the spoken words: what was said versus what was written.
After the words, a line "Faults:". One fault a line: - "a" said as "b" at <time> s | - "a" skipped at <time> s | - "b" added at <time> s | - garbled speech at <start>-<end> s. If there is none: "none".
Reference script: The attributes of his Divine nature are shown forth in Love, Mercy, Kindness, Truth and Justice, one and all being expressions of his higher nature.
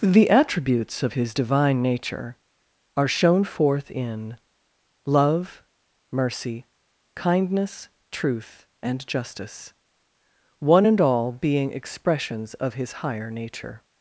The attributes of his Divine nature are shown forth in Love, Mercy, Kindness, Truth and Justice, one and all being expressions of his higher nature.
Faults:
none